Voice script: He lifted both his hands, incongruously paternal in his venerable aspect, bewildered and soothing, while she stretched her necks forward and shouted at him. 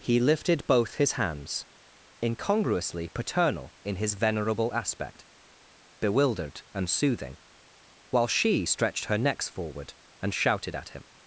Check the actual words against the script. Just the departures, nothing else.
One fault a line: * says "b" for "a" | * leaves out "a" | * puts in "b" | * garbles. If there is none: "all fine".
all fine